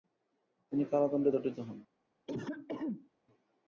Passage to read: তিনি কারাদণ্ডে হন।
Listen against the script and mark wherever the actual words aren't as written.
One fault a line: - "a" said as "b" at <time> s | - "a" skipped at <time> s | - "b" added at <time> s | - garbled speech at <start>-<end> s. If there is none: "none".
- "দণ্ডিত" added at 1.3 s